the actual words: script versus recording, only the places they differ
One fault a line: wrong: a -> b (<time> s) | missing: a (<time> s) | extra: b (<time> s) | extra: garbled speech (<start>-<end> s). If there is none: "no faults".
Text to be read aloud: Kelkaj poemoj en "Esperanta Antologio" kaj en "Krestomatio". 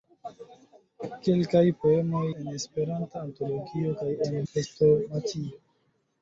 no faults